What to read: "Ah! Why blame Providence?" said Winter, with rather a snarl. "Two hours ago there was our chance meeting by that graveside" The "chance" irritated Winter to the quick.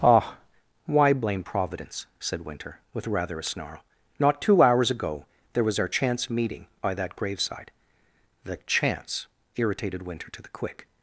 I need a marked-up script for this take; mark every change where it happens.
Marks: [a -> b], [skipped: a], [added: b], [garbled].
"Ah! Why blame Providence?" said Winter, with rather a snarl. [added: Not] "Two hours ago there was our chance meeting by that graveside" The "chance" irritated Winter to the quick.